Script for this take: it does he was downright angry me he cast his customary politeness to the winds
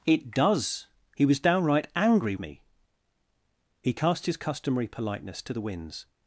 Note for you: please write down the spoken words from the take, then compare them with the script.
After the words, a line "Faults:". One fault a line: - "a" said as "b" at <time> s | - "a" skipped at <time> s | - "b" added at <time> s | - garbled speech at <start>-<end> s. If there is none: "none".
it does he was downright angry me he cast his customary politeness to the winds
Faults:
none